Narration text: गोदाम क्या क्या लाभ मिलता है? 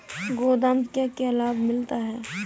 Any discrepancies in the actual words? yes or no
no